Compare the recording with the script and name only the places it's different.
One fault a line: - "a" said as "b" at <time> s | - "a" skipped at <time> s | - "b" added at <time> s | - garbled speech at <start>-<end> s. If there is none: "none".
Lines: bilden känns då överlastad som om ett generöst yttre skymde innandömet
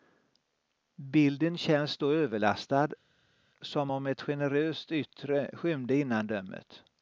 none